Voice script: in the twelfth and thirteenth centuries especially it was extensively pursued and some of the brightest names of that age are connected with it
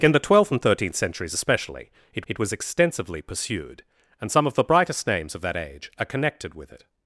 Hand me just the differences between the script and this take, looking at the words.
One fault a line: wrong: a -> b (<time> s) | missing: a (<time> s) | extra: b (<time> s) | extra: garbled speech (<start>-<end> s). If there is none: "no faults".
extra: it (2.3 s)